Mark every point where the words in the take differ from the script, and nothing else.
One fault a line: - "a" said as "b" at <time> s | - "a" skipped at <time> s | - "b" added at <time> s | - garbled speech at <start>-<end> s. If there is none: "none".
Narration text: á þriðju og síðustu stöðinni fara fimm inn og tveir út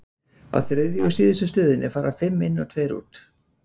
none